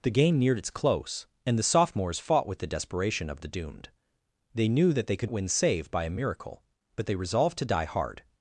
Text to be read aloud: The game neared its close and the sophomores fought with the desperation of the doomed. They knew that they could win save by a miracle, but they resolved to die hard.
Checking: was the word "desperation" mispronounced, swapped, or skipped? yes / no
no